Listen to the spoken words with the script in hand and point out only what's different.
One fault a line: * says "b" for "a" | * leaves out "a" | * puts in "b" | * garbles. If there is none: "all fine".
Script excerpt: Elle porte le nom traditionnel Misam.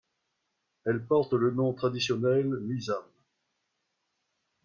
all fine